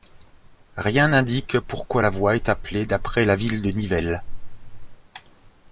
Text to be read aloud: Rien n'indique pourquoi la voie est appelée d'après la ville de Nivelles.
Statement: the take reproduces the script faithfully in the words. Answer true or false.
true